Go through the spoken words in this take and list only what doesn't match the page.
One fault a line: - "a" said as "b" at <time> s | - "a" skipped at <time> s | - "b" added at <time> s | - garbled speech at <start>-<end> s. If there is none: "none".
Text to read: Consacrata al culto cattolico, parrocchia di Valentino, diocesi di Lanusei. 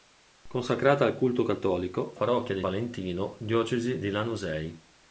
none